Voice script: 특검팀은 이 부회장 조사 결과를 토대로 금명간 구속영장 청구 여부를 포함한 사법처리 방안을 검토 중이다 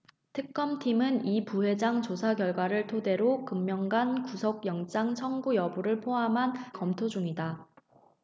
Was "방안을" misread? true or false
true